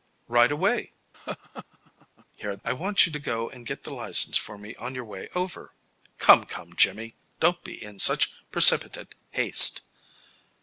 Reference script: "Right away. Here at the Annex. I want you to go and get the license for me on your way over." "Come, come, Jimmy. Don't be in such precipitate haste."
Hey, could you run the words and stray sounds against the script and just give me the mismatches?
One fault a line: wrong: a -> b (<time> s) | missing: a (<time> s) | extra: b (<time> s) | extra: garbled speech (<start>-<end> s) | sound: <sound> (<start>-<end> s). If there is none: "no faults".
sound: laugh (1.1-2.3 s)
missing: the Annex (2.6 s)